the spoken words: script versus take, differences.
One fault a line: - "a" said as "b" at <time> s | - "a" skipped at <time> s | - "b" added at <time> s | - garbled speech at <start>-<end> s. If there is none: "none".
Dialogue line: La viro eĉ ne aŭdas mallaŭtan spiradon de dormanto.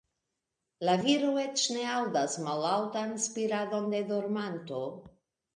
none